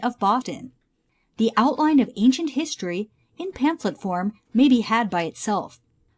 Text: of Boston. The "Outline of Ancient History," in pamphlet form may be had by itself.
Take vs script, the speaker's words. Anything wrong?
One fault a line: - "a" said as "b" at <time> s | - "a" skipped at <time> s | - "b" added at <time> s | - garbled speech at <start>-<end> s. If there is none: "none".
none